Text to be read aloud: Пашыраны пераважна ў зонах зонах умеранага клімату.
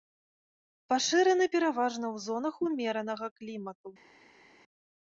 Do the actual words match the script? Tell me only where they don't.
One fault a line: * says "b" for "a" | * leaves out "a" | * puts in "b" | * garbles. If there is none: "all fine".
* leaves out "зонах"